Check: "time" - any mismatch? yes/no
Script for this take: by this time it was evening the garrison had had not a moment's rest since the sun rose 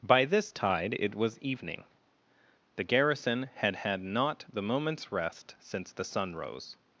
yes